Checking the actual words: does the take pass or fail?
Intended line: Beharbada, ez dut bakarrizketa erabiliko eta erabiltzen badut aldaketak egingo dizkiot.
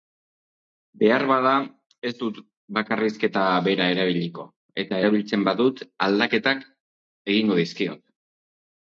fail